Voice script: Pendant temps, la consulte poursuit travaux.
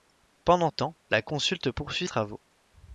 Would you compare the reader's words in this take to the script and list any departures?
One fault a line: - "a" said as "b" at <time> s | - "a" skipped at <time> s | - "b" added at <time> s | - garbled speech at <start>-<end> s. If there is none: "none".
none